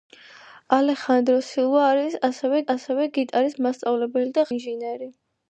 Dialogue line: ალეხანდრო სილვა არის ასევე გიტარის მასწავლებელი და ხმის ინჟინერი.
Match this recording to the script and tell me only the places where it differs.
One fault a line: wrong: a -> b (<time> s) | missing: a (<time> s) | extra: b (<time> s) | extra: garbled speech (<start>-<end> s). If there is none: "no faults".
extra: ასევე (2.7 s)
missing: ხმის (4.5 s)